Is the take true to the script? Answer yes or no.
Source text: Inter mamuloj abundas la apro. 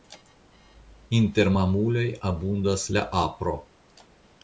yes